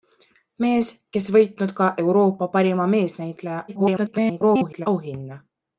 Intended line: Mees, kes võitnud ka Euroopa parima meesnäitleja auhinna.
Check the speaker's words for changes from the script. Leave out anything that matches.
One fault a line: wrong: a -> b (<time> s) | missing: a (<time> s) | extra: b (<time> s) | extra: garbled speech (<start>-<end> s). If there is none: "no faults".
extra: garbled speech (3.7-4.9 s)